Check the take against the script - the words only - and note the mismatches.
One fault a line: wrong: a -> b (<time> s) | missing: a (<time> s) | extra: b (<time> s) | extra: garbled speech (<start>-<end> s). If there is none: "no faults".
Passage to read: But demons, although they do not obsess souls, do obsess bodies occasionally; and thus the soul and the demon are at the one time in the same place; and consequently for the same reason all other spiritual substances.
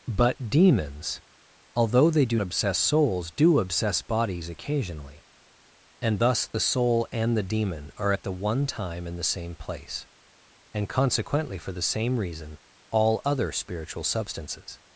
missing: not (2.4 s)